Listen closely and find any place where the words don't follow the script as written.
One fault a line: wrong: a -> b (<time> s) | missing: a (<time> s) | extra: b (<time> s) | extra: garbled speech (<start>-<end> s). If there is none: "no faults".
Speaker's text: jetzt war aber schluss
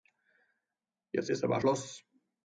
wrong: war -> ist (1.3 s)